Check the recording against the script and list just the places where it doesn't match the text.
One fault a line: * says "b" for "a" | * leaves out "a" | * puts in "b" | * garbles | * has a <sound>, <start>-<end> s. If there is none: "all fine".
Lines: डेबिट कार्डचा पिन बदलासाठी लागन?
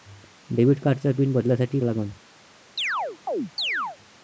* has a chirp, 2.8-4.0 s